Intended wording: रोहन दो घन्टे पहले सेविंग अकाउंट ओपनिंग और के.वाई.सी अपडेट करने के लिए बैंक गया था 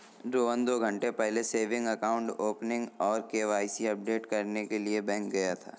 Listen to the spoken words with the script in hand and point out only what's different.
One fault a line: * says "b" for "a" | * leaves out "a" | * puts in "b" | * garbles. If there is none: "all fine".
all fine